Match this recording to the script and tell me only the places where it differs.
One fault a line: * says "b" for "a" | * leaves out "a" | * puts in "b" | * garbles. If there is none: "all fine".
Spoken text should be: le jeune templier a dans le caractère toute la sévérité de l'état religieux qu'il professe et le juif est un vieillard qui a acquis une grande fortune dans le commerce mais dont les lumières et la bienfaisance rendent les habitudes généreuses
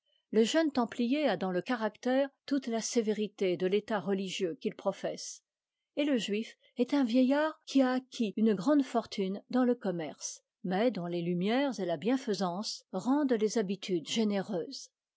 all fine